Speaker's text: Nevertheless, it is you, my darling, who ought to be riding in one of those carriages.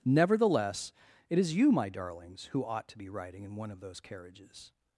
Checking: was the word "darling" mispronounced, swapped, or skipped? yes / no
yes